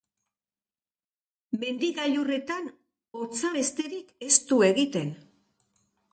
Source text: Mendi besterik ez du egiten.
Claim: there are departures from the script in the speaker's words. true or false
true